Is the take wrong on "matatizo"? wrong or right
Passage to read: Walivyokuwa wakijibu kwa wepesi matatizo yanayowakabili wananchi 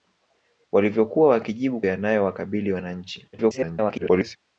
wrong